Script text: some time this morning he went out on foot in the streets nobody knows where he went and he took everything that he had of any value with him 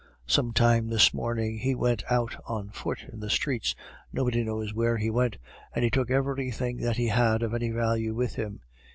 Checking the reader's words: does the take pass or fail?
pass